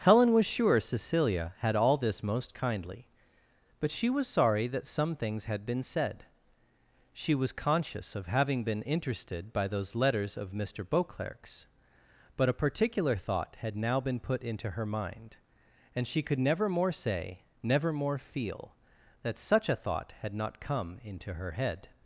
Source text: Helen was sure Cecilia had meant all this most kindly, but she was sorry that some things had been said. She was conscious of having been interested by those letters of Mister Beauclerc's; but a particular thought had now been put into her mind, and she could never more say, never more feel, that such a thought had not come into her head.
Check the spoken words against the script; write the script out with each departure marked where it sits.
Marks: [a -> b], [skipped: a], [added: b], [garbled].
Helen was sure Cecilia had [skipped: meant] all this most kindly, but she was sorry that some things had been said. She was conscious of having been interested by those letters of Mister Beauclerc's; but a particular thought had now been put into her mind, and she could never more say, never more feel, that such a thought had not come into her head.